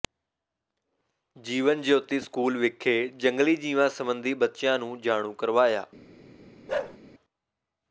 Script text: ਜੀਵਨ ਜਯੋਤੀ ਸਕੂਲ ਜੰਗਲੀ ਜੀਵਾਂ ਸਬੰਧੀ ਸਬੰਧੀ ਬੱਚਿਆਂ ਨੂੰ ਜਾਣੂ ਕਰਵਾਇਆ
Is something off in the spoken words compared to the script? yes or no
yes